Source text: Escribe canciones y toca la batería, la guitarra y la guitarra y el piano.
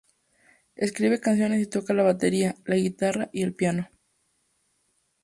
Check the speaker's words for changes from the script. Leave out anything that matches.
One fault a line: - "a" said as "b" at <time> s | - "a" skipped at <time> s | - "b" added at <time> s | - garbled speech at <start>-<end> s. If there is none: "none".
- "la guitarra y" skipped at 3.4 s